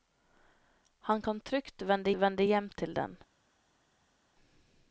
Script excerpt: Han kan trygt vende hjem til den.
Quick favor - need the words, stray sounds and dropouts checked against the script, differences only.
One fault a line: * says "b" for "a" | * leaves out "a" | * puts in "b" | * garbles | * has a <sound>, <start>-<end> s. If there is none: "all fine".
* puts in "vende"